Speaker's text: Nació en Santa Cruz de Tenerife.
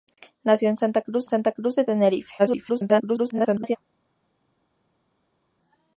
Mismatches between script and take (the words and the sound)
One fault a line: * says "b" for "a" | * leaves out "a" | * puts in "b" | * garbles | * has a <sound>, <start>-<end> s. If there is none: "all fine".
* puts in "Santa Cruz"
* garbles